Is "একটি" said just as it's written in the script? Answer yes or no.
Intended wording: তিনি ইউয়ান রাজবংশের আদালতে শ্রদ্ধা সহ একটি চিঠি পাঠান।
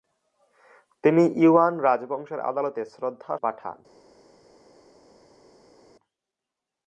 no